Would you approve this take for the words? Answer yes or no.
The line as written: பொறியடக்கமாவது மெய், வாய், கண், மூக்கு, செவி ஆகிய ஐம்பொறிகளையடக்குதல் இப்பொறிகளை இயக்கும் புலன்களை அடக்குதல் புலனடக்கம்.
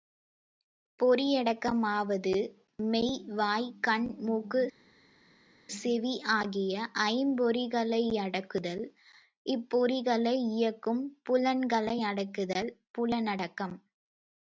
yes